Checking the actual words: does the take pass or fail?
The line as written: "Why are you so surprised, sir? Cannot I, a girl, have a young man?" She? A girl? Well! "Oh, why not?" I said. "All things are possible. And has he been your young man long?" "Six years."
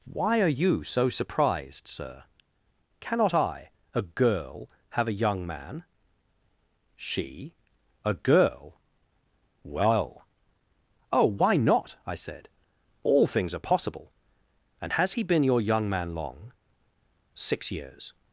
pass